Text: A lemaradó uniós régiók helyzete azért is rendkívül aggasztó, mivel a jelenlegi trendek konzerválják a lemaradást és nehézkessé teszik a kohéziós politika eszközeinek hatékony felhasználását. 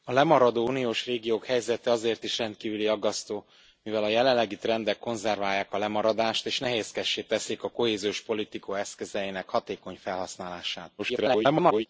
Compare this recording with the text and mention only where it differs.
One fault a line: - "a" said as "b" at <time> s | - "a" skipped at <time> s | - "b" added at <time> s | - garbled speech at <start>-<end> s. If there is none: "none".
- garbled speech at 11.0-11.9 s